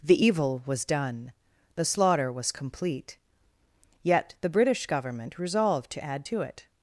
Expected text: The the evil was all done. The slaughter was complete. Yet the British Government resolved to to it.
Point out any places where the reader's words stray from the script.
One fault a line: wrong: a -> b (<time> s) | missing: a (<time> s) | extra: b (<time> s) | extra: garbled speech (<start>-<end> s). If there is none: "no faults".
missing: the (0.2 s)
missing: all (0.8 s)
extra: add (6.0 s)